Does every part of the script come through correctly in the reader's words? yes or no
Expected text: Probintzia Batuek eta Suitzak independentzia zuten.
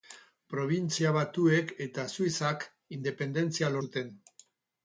yes